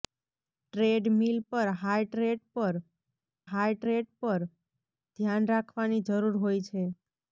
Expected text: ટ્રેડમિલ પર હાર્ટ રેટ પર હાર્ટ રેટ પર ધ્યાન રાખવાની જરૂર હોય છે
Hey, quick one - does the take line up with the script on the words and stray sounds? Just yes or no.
yes